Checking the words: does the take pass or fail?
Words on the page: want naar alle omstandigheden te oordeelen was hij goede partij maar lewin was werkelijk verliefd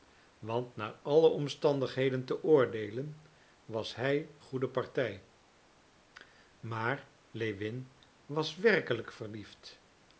pass